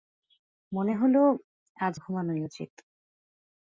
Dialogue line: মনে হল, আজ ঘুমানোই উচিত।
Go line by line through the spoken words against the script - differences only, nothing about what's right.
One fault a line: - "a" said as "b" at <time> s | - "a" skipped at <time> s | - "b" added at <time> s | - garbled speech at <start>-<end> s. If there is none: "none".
none